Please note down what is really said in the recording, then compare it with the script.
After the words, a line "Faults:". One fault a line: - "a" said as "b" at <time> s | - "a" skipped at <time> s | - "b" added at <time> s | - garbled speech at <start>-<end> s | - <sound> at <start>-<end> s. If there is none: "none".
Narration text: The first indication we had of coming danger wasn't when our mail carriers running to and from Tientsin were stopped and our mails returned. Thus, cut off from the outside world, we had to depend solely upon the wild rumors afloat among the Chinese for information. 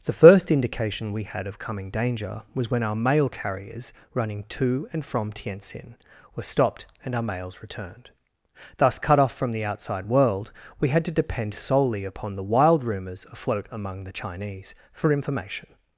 The first indication we had of coming danger was when our mail carriers running to and from Tientsin were stopped and our mails returned. Thus, cut off from the outside world, we had to depend solely upon the wild rumors afloat among the Chinese for information.
Faults:
- "wasn't" said as "was" at 2.5 s